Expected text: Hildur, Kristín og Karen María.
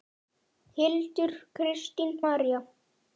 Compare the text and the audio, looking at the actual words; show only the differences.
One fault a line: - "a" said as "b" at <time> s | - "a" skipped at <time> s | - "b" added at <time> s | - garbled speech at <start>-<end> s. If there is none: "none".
- "og Karen" skipped at 2.1 s